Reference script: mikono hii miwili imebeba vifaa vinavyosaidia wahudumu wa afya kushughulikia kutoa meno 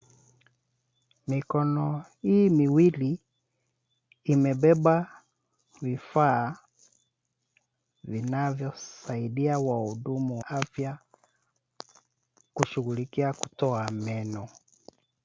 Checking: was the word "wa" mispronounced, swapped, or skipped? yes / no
yes